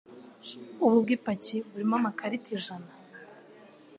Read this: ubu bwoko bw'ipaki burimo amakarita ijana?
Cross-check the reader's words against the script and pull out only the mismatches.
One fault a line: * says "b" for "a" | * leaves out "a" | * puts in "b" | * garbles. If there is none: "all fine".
* leaves out "bwoko"